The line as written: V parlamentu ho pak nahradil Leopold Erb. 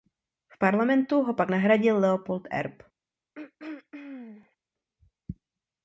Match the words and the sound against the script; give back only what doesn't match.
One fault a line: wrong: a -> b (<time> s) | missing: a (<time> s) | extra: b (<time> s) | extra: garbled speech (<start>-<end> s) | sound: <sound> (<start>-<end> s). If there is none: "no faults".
sound: throat clearing (3.3-4.6 s)